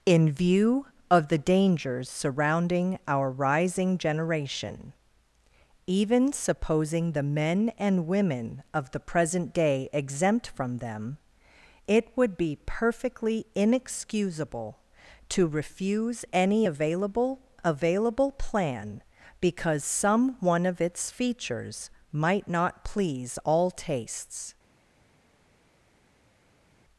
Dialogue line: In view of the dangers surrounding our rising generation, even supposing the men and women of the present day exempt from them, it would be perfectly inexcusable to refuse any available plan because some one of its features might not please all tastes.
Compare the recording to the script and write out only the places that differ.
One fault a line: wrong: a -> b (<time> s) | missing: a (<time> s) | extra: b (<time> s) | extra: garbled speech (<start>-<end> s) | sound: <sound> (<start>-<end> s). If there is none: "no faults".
extra: available (17.6 s)